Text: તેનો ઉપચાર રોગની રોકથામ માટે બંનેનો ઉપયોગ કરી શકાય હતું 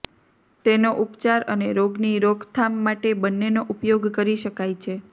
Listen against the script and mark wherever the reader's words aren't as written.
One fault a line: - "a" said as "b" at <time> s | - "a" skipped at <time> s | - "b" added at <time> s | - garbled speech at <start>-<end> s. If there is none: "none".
- "અને" added at 1.5 s
- "હતું" said as "છે" at 4.8 s